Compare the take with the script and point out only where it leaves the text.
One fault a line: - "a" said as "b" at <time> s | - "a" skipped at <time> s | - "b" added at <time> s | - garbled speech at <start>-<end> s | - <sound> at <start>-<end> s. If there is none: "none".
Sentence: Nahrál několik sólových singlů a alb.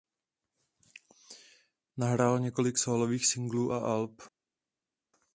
none